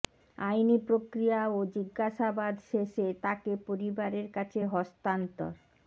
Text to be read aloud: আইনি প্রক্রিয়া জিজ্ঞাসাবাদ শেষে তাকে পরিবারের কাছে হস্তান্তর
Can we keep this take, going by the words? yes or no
no